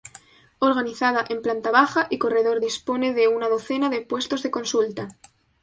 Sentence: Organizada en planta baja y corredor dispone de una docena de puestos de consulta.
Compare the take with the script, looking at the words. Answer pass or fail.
pass